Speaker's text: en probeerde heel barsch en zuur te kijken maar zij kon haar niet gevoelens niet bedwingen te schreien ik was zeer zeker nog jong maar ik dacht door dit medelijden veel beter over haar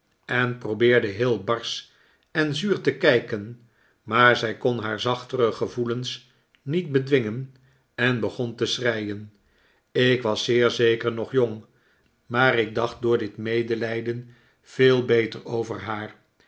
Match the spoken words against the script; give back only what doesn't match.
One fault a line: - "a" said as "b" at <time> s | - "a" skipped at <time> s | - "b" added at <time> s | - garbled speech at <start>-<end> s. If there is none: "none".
- "niet" said as "zachtere" at 5.0 s
- "en begon" added at 8.0 s